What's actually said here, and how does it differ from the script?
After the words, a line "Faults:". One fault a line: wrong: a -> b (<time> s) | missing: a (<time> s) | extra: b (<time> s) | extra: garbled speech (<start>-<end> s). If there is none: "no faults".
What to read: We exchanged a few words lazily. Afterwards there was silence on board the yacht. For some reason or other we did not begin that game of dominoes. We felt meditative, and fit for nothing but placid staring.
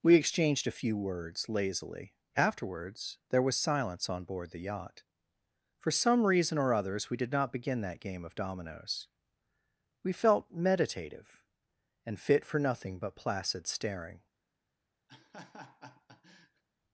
We exchanged a few words lazily. Afterwards there was silence on board the yacht. For some reason or others we did not begin that game of dominoes. We felt meditative, and fit for nothing but placid staring.
Faults:
wrong: other -> others (6.7 s)